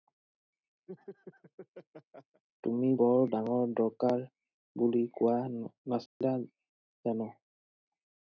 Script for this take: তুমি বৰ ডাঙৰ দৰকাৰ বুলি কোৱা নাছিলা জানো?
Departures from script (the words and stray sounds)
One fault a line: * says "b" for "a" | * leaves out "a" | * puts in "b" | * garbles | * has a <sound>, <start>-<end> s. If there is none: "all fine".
* has a laugh, 0.9-2.4 s
* has a dropout, 6.1-6.2 s